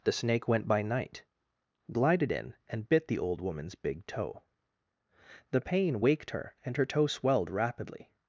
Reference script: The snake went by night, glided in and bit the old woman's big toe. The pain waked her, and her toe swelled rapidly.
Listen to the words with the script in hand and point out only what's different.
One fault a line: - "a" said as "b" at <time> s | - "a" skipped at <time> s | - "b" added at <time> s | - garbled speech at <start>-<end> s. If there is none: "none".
none